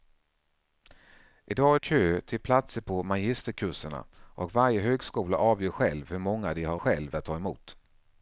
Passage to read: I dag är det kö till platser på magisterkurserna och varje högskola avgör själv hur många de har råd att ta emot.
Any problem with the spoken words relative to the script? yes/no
yes